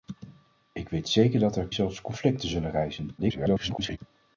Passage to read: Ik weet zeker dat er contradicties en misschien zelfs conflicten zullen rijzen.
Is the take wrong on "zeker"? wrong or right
right